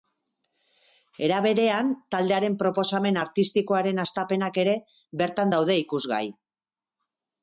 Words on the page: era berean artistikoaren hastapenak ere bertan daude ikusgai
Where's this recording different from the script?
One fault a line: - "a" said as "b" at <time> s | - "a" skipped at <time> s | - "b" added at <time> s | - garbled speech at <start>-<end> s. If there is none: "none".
- "taldearen proposamen" added at 2.1 s